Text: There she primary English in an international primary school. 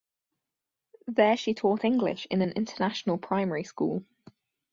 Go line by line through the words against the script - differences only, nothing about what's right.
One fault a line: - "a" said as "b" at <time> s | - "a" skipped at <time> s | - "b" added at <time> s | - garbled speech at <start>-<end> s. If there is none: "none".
- "primary" said as "taught" at 1.5 s